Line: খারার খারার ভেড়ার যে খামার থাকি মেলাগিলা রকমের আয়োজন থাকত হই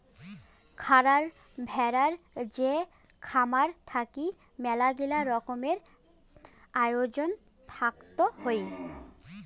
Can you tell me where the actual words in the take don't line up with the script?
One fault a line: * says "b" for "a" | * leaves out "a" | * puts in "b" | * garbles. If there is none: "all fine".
* leaves out "খারার"